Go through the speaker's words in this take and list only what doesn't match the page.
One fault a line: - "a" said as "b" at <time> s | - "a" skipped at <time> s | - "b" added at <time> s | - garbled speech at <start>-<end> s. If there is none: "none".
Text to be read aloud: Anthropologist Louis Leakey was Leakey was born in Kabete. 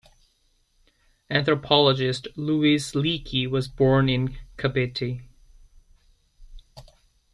- "Leakey was" skipped at 3.7 s